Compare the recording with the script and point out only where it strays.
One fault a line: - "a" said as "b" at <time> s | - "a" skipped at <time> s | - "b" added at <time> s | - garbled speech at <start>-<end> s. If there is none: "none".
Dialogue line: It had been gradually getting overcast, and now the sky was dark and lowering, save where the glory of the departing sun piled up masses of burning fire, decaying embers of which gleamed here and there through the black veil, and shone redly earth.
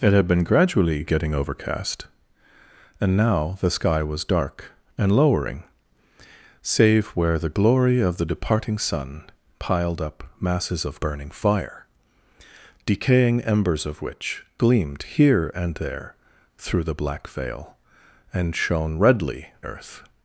none